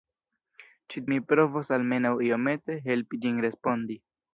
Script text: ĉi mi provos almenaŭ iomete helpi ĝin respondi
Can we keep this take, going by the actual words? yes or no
yes